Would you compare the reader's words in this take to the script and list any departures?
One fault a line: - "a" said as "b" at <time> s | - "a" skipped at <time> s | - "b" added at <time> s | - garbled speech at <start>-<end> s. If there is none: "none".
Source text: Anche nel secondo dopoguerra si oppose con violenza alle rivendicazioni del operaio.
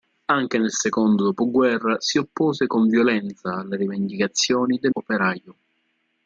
none